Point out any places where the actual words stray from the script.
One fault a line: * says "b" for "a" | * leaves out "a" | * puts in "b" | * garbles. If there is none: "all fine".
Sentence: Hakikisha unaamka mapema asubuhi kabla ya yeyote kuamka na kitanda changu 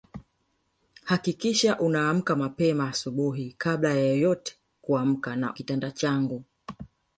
all fine